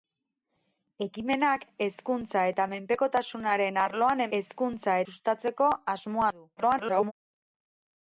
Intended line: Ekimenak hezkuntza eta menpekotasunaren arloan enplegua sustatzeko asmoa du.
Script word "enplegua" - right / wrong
wrong